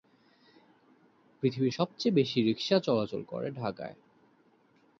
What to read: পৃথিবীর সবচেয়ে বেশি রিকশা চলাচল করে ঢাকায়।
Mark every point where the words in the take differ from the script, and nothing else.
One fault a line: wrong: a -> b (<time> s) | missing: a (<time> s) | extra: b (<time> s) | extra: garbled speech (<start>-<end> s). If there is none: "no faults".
no faults